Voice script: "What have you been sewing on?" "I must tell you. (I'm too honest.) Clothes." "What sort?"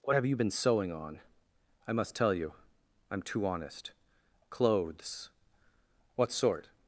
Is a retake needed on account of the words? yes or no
no